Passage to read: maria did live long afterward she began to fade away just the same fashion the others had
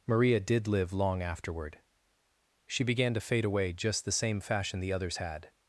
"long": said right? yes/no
yes